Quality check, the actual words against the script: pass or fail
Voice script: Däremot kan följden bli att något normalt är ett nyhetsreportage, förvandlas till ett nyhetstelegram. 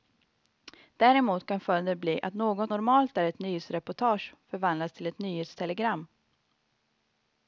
pass